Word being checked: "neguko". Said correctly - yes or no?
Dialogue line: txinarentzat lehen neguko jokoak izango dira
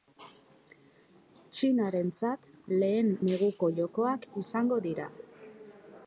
yes